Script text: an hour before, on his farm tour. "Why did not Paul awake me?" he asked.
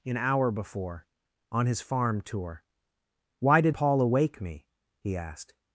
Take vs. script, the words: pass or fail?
fail